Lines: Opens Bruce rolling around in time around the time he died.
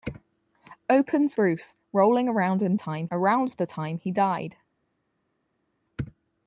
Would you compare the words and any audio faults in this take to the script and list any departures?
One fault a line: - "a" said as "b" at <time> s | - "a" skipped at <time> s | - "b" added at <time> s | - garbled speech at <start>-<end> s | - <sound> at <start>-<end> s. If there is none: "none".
none